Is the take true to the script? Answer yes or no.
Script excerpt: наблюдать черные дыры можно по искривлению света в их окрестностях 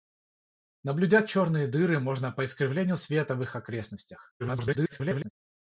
no